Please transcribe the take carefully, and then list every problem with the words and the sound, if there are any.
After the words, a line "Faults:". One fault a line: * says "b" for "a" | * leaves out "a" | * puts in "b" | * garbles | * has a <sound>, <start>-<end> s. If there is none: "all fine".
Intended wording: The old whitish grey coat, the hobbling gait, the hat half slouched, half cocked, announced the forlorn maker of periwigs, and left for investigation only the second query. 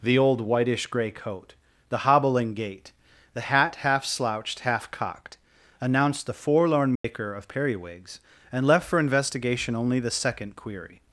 The old whitish grey coat, the hobbling gait, the hat half slouched, half cocked, announced the forlorn maker of periwigs, and left for investigation only the second query.
Faults:
* has a dropout, 7.0-7.0 s